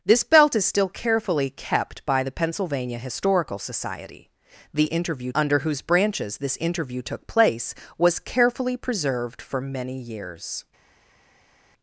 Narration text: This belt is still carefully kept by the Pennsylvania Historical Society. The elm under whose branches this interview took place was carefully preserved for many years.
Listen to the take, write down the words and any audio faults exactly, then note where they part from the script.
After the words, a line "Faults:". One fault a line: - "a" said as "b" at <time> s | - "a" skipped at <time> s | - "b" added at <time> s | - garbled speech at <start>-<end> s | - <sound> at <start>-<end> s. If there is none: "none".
This belt is still carefully kept by the Pennsylvania Historical Society. The interview under whose branches this interview took place was carefully preserved for many years.
Faults:
- "elm" said as "interview" at 4.9 s